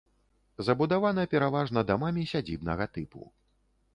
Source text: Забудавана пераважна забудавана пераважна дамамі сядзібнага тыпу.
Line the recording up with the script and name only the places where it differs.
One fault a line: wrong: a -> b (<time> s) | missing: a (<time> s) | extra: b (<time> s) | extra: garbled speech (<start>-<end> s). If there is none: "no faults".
missing: забудавана пераважна (1.8 s)